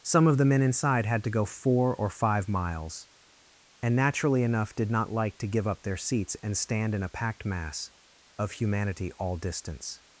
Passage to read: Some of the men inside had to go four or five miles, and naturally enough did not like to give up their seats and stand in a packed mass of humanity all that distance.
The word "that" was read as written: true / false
false